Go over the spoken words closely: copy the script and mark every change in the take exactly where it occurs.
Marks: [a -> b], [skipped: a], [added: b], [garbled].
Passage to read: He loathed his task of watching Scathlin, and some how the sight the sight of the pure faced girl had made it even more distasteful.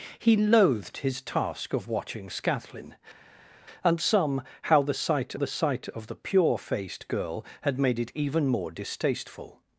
He loathed his task of watching Scathlin, and some how the sight the sight of the pure faced girl had made it even more distasteful.